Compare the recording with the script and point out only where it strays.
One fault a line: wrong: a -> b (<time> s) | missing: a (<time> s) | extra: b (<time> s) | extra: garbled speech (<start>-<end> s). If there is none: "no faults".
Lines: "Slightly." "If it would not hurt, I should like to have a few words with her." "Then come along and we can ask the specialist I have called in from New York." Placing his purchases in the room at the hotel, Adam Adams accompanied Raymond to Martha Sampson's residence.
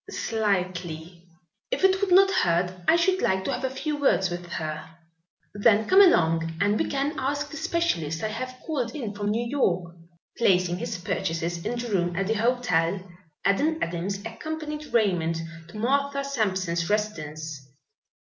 no faults